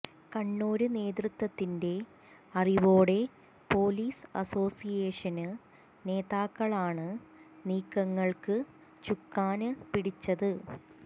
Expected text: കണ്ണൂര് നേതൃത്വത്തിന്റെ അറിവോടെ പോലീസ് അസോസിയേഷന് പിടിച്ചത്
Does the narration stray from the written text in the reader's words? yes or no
yes